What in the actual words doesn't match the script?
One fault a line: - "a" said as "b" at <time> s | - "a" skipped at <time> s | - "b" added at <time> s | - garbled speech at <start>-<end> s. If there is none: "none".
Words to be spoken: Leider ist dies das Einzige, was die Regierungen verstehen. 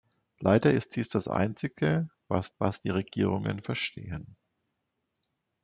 - "was" added at 2.6 s